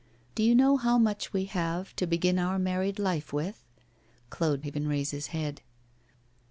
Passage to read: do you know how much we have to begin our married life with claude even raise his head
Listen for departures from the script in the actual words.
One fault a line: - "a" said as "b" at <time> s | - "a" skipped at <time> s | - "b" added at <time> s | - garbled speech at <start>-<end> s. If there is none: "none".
none